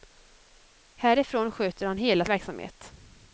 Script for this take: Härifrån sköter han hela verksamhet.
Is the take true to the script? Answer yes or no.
yes